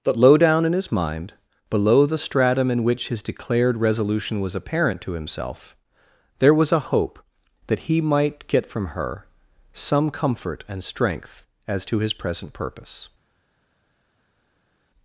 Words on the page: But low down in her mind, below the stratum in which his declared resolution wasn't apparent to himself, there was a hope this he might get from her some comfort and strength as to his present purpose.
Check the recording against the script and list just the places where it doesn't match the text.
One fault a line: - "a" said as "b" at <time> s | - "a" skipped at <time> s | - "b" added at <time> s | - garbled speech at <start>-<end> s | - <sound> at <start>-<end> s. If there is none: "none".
- "her" said as "his" at 0.7 s
- "wasn't" said as "was" at 4.4 s
- "this" said as "that" at 7.7 s